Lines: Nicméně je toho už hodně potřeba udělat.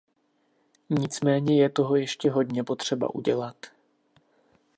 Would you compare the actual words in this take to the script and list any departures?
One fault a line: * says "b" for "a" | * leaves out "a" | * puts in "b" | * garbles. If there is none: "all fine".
* says "ještě" for "už"